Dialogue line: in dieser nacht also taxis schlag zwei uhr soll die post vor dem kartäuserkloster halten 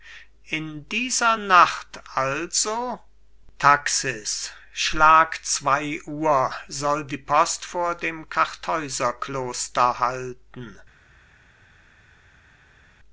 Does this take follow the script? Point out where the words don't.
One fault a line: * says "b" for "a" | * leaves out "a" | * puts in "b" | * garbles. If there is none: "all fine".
all fine